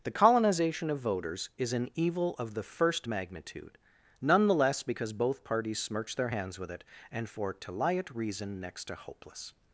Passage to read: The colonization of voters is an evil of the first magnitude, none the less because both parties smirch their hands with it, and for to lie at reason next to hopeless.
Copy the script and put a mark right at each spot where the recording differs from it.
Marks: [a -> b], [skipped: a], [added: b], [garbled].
The colonization of voters is an evil of the first magnitude, none the less because both parties smirch their hands with it, and for to lie at reason next to hopeless.